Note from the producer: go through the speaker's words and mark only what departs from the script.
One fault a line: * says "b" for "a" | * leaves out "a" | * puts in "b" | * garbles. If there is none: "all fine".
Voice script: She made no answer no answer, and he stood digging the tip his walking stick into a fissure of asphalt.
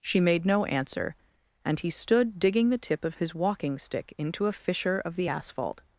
* leaves out "no answer"
* puts in "of"
* puts in "the"